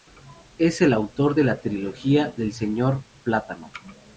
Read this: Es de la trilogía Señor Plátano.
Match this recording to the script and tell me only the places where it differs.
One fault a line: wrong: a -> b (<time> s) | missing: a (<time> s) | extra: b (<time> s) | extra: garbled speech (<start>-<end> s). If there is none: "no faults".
extra: el autor (0.8 s)
extra: del (2.3 s)